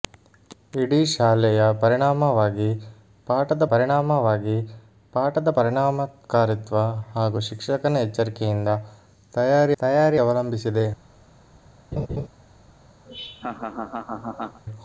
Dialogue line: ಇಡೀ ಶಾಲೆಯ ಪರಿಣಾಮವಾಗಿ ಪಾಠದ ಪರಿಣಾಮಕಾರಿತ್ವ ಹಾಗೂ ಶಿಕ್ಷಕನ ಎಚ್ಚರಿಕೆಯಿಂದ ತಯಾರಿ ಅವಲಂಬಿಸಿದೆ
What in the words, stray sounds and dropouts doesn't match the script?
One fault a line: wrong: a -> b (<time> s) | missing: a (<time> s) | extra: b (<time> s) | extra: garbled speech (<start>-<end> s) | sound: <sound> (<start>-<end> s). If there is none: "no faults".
extra: ಪರಿಣಾಮವಾಗಿ ಪಾಠದ (3.7 s)
extra: ತಯಾರಿ (9.8 s)
sound: laugh (11.9-12.3 s)
sound: laugh (13.1-14.6 s)